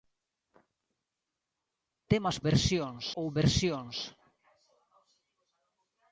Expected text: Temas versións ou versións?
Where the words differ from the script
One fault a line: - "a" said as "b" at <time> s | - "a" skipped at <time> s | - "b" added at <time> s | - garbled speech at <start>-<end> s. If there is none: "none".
none